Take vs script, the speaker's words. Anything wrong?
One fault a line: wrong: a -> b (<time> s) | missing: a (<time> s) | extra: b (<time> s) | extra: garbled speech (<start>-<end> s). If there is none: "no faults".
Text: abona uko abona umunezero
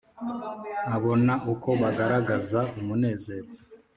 wrong: abona -> bagaragaza (1.8 s)